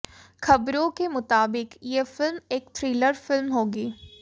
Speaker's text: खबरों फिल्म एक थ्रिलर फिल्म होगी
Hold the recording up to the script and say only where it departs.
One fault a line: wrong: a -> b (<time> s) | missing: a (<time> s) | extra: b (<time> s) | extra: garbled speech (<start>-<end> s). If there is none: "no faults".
extra: के मुताबिक ये (0.9 s)